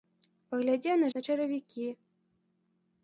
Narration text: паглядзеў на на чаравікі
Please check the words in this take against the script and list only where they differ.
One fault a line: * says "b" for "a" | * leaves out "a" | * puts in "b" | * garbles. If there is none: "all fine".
all fine